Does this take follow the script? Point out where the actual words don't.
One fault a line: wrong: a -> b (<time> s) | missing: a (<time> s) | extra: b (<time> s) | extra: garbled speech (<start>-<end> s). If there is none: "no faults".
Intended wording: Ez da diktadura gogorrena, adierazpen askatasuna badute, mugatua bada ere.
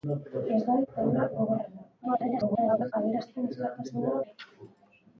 extra: garbled speech (2.0-2.9 s)
missing: badute mugatua bada (4.2 s)